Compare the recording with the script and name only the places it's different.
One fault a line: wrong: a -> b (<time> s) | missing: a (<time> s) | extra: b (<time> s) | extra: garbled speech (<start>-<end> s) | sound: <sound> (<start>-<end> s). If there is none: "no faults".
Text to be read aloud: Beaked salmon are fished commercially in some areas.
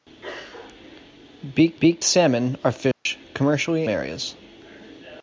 extra: beaked (1.8 s)
sound: dropout (2.9-3.1 s)
missing: in some (3.9 s)